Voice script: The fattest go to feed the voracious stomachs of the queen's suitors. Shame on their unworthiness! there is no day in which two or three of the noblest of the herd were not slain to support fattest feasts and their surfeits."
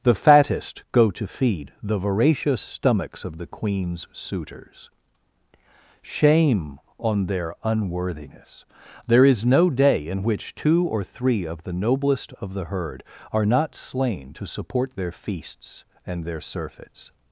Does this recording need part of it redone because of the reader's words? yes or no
yes